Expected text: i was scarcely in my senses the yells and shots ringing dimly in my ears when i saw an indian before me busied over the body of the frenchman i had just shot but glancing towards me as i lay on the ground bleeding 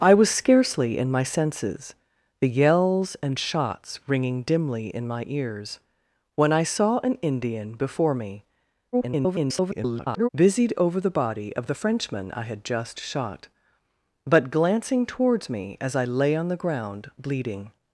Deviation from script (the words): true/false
true